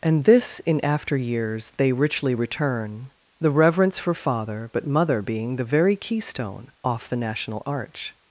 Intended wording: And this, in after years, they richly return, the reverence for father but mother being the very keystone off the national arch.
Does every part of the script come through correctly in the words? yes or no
yes